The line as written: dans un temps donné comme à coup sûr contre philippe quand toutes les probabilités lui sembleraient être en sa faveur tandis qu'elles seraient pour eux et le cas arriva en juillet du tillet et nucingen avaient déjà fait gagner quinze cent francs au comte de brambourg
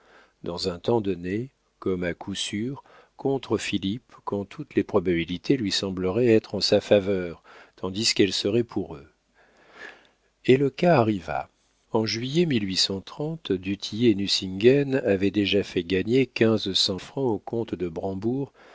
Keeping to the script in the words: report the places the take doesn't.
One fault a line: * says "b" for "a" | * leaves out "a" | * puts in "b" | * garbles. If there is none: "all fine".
all fine